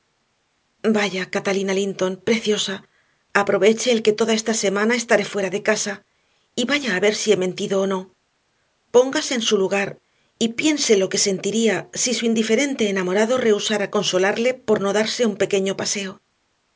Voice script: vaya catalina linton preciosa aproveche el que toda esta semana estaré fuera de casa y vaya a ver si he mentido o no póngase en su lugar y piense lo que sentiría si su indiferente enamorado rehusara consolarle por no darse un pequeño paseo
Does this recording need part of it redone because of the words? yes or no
no